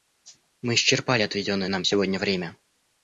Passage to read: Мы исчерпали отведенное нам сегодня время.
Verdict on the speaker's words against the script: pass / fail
pass